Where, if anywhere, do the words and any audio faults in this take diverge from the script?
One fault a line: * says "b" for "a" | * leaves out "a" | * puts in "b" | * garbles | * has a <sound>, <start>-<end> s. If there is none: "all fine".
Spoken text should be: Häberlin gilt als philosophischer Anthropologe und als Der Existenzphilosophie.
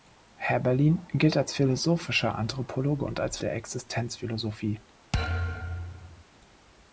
* has a thud, 5.1-6.2 s